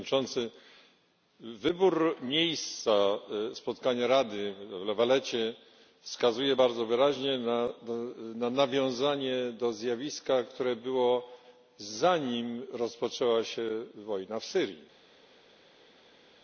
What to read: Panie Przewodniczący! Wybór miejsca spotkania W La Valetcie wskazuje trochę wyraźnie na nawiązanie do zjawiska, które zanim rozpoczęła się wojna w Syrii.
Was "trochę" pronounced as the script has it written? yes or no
no